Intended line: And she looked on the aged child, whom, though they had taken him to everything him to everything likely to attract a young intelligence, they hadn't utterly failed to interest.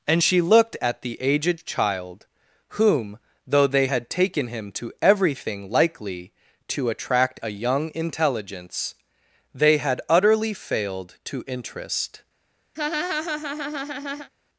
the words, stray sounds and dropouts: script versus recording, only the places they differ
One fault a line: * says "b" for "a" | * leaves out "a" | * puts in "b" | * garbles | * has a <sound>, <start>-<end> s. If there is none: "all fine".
* says "at" for "on"
* leaves out "him to everything"
* says "had" for "hadn't"
* has a laugh, 12.8-14.3 s